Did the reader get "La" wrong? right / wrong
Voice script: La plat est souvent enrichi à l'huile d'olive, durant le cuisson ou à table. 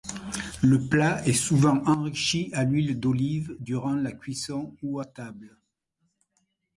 wrong